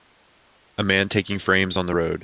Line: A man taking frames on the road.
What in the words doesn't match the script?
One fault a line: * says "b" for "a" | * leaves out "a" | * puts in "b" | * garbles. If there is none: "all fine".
all fine